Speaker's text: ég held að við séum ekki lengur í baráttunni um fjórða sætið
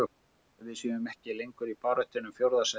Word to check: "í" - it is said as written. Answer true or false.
true